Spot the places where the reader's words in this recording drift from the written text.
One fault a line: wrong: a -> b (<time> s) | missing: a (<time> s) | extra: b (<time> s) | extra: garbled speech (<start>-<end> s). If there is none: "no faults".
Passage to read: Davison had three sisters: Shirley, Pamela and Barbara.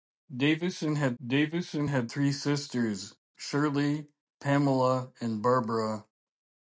extra: davison had (1.3 s)